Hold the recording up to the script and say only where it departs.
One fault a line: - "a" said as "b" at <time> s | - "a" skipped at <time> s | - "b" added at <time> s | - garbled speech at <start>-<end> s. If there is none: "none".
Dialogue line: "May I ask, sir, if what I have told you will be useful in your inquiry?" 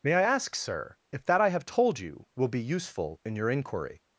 - "what" said as "that" at 1.2 s